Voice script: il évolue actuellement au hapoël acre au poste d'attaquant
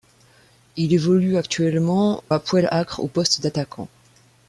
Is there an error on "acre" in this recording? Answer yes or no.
no